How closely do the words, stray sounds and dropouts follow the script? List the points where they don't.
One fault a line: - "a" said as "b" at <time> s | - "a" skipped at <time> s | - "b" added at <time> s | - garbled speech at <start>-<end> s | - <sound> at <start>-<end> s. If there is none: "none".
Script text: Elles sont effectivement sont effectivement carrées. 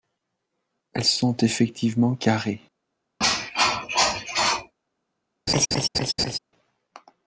- "sont effectivement" skipped at 2.1 s
- cough at 3.2-4.7 s
- laugh at 5.5-6.4 s